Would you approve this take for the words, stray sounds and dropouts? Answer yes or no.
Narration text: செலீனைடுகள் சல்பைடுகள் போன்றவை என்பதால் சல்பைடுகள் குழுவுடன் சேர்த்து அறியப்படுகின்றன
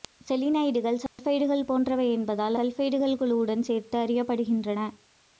no